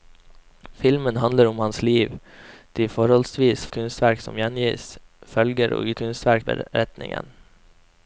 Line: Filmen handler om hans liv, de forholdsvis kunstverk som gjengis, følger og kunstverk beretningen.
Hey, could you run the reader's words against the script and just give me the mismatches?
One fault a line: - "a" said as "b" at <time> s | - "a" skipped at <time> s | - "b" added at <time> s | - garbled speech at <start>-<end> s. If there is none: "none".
none